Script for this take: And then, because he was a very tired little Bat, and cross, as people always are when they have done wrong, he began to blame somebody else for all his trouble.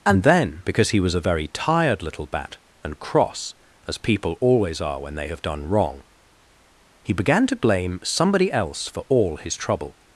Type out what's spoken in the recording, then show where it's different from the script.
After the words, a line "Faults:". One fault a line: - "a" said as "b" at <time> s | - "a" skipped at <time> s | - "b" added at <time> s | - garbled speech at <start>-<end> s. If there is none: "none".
And then, because he was a very tired little Bat, and cross, as people always are when they have done wrong, he began to blame somebody else for all his trouble.
Faults:
none